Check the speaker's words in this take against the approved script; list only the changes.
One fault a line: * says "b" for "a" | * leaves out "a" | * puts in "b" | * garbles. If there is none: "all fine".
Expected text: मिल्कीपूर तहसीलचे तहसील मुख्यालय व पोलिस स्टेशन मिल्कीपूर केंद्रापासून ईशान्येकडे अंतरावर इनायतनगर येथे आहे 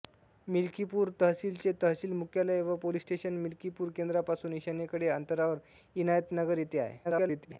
* garbles